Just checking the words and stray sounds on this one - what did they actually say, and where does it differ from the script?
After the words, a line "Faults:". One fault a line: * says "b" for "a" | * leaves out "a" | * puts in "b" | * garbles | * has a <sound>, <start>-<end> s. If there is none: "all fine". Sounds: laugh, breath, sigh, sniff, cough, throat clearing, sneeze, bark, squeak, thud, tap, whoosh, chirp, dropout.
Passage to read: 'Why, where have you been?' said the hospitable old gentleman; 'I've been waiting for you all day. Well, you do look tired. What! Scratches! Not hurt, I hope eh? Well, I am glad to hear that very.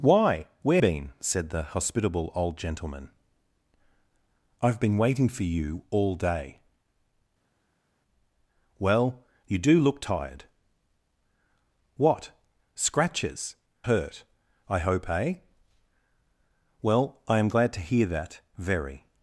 'Why, where been?' said the hospitable old gentleman; 'I've been waiting for you all day. Well, you do look tired. What! Scratches! Hurt, I hope eh? Well, I am glad to hear that very.
Faults:
* leaves out "have you"
* leaves out "Not"